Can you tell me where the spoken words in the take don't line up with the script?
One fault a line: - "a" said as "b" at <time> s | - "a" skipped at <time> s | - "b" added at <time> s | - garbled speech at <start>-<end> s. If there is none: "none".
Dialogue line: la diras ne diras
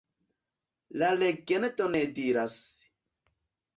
- "diras" said as "legendo" at 1.2 s